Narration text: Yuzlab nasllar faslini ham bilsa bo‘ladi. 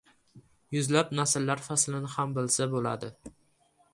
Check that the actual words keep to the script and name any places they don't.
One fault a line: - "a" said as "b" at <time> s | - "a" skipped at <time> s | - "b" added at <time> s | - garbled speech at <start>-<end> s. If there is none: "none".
none